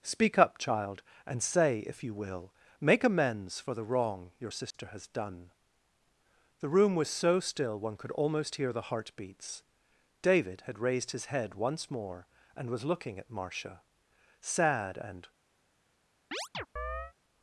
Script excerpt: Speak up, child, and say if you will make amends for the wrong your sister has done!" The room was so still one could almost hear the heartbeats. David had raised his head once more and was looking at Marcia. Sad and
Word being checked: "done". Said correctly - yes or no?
yes